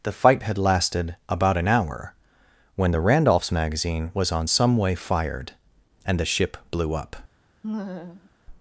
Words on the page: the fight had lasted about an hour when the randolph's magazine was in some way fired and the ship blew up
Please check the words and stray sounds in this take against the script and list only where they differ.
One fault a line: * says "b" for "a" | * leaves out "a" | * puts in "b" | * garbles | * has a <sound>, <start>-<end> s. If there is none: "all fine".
* says "on" for "in"
* has a laugh, 7.6-8.3 s